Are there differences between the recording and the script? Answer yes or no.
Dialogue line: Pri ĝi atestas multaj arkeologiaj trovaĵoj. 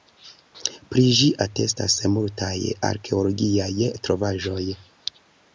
no